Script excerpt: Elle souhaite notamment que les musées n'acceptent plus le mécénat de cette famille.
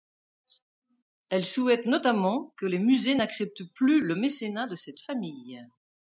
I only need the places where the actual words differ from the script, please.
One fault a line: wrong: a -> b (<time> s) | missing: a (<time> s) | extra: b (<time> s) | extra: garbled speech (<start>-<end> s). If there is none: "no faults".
no faults